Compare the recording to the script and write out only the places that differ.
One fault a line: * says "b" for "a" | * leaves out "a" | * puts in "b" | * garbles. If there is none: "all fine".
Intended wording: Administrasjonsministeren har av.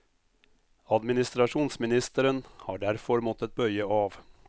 * puts in "derfor måttet bøye"